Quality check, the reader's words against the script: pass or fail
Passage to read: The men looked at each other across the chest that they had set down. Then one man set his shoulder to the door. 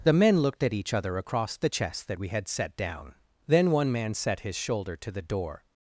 fail